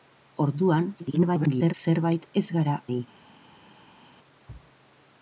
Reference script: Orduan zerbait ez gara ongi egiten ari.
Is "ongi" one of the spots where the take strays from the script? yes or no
yes